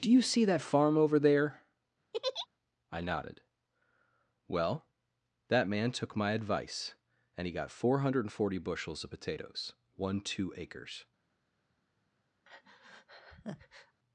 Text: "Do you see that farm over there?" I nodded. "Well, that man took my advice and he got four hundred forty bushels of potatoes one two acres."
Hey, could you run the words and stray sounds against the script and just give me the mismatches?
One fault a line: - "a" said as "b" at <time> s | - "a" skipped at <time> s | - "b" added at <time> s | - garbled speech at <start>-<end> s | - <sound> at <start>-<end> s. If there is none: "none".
- laugh at 2.1-2.5 s
- breath at 12.4-14.0 s